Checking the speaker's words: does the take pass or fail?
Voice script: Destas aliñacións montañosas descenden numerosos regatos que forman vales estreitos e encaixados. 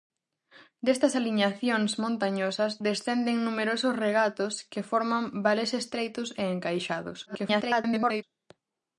fail